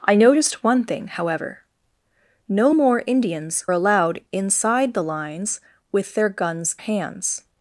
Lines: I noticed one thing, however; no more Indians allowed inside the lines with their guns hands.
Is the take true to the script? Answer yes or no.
yes